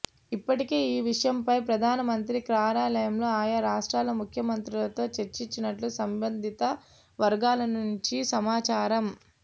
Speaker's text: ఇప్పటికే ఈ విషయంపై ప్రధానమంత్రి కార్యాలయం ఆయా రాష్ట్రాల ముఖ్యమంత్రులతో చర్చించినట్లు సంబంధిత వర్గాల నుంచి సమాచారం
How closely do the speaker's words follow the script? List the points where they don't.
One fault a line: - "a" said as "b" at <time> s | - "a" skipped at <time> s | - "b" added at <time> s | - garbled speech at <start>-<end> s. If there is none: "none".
none